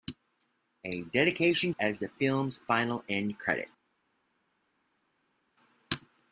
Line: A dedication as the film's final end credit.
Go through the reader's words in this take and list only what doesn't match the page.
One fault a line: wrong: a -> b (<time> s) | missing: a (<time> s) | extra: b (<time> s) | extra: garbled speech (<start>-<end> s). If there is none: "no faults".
no faults